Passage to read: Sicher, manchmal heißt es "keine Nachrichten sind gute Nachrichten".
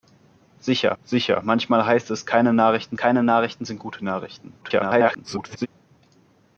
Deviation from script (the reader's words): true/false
true